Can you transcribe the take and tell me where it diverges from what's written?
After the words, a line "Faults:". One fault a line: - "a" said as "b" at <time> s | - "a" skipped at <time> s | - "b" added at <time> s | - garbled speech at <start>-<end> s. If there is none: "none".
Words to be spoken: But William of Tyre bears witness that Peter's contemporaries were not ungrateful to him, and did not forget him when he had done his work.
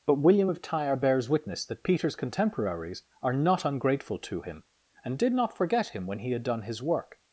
But William of Tyre bears witness that Peter's contemporaries are not ungrateful to him, and did not forget him when he had done his work.
Faults:
- "were" said as "are" at 3.2 s